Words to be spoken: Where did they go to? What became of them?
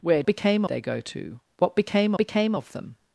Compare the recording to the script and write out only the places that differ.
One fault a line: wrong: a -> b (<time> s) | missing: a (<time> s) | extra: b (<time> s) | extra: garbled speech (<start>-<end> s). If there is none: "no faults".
wrong: did -> became (0.3 s)
extra: became (2.2 s)